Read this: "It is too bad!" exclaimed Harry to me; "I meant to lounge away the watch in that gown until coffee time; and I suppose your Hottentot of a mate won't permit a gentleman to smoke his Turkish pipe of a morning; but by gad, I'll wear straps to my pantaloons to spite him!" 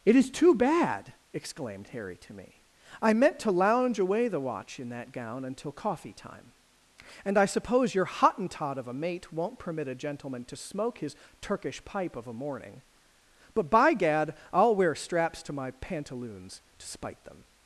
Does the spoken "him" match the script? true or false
false